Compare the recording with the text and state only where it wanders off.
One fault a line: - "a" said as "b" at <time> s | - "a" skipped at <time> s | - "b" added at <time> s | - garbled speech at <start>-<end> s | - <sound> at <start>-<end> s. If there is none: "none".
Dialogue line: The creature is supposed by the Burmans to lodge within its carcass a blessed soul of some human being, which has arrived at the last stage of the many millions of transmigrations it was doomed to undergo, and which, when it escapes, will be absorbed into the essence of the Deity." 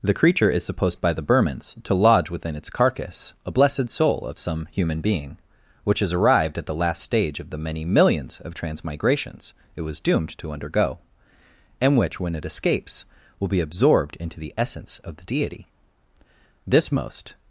- "This most" added at 16.6 s